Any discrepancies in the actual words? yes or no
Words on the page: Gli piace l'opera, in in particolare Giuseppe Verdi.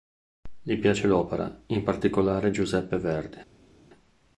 yes